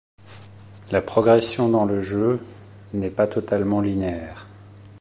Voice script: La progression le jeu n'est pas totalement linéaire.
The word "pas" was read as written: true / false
true